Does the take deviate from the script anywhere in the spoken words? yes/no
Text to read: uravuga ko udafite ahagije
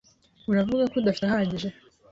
no